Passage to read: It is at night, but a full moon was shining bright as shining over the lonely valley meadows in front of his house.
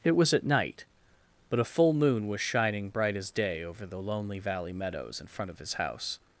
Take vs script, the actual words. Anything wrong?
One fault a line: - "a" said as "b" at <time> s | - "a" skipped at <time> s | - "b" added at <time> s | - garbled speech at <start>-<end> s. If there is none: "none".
- "is" said as "was" at 0.1 s
- "shining" said as "day" at 3.3 s